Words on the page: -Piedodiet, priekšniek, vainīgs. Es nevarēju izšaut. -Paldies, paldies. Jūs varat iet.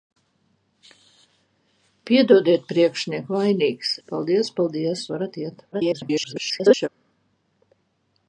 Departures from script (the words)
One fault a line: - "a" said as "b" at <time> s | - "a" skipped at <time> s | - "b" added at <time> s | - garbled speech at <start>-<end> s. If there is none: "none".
- "Es nevarēju izšaut" skipped at 3.9 s
- "Jūs" skipped at 5.1 s
- garbled speech at 5.7-6.9 s